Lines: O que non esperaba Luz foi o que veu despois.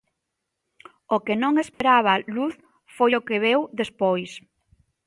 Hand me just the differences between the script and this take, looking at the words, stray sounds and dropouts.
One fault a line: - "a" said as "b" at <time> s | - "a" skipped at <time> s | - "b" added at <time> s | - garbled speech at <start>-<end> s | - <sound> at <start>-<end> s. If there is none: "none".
- dropout at 1.7-1.8 s